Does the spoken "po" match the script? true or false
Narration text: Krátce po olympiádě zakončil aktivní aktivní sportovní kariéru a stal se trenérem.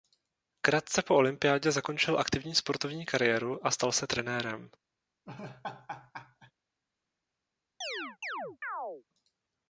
true